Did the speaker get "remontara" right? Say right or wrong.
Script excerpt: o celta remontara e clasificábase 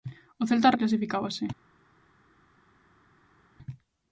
wrong